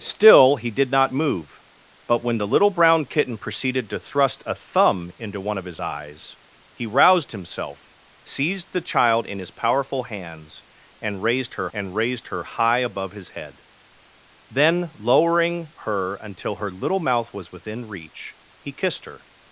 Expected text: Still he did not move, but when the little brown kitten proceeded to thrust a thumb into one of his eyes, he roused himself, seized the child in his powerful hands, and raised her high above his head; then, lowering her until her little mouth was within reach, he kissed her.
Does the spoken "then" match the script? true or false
true